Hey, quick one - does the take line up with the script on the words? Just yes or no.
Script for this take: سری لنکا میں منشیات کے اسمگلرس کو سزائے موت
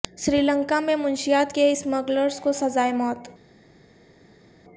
yes